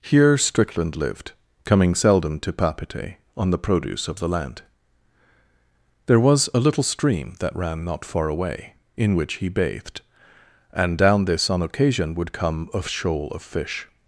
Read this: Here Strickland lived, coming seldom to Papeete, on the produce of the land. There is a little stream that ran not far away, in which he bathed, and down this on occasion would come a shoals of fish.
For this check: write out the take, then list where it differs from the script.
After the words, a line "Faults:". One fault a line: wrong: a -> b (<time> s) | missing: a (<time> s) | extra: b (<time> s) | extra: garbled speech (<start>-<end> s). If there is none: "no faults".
Here Strickland lived, coming seldom to Papeete, on the produce of the land. There was a little stream that ran not far away, in which he bathed, and down this on occasion would come a shoal of fish.
Faults:
wrong: is -> was (6.2 s)
wrong: shoals -> shoal (12.8 s)